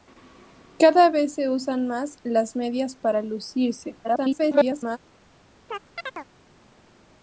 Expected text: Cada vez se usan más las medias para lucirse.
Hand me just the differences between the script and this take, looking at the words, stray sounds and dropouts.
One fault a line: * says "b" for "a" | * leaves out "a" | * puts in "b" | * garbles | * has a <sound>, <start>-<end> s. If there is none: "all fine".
* garbles
* has a chirp, 5.7-6.3 s